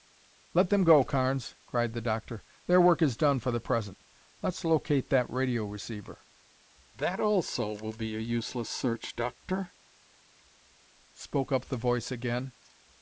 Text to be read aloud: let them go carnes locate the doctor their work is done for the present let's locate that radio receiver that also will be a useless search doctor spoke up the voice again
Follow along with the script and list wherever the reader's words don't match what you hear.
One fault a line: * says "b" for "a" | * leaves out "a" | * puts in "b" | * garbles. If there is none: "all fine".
* says "cried" for "locate"